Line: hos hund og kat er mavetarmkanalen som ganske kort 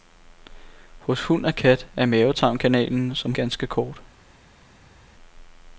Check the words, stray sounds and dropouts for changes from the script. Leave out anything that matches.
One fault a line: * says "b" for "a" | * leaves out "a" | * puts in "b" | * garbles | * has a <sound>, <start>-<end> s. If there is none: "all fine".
all fine